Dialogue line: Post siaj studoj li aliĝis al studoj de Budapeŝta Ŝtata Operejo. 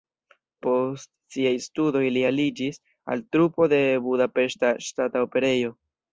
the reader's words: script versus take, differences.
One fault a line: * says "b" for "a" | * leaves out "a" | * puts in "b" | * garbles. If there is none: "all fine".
* says "trupo" for "studoj"